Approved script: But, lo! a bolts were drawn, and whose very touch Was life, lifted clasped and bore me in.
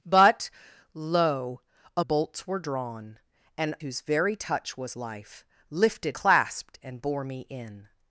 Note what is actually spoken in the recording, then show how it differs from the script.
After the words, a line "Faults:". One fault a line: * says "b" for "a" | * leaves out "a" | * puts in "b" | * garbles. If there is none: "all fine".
But, lo! a bolts were drawn, and whose very touch Was life, lifted clasped and bore me in.
Faults:
all fine